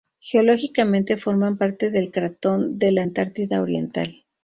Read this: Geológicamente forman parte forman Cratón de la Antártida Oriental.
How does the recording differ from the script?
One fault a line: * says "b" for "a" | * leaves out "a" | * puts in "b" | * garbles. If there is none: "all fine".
* says "del" for "forman"